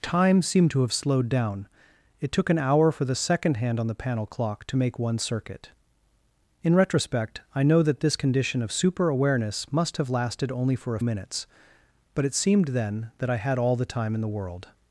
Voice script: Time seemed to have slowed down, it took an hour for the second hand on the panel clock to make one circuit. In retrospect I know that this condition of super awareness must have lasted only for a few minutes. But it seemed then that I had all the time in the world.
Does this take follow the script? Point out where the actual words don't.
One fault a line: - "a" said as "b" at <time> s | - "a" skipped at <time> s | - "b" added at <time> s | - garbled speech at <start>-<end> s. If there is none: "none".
- "few" skipped at 11.0 s